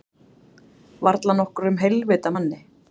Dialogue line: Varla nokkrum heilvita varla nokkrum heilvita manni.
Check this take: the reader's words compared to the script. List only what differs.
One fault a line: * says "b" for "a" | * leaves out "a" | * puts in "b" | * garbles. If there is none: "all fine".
* leaves out "varla nokkrum heilvita"